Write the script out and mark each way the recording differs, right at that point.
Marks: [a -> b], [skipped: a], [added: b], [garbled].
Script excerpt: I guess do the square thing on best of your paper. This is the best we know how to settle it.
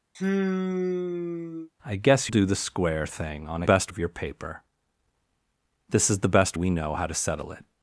I guess do the square thing on best of your paper. This is the best we know how to settle it.